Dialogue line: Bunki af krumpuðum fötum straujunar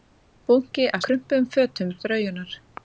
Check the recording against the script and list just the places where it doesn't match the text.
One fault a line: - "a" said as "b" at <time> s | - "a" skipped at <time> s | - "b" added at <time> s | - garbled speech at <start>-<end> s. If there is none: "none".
none